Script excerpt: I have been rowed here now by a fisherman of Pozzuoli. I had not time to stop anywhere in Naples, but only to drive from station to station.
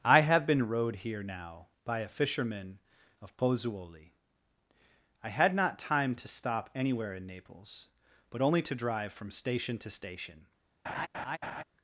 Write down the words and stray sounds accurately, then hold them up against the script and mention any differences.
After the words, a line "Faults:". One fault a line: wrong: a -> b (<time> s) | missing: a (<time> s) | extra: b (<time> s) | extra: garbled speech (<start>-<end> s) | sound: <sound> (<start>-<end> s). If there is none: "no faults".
I have been rowed here now by a fisherman of Pozzuoli. I had not time to stop anywhere in Naples, but only to drive from station to station.
Faults:
sound: laugh (10.8-11.6 s)